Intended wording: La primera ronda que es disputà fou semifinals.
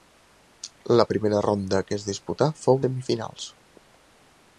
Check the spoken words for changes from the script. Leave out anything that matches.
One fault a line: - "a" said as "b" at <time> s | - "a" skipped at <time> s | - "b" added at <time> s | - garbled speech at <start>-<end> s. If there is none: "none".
none